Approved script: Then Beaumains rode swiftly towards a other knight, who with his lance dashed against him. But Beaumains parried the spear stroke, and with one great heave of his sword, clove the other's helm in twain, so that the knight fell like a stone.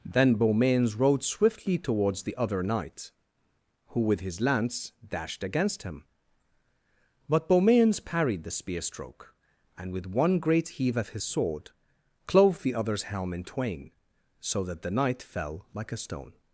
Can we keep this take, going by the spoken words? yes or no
no